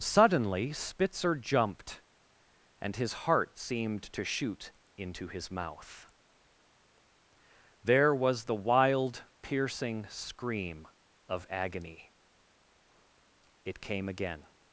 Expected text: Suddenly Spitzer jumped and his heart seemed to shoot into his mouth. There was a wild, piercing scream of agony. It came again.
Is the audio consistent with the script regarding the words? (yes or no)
no